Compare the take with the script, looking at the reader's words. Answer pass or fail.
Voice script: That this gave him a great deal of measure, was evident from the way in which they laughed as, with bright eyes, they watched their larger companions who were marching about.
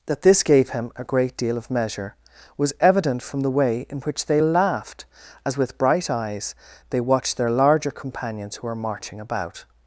pass